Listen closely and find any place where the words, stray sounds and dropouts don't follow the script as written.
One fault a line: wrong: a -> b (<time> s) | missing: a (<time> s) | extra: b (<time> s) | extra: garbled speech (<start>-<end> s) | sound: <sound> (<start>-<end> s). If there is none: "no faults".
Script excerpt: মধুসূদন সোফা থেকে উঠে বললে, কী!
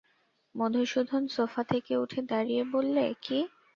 extra: দাঁড়িয়ে (2.3 s)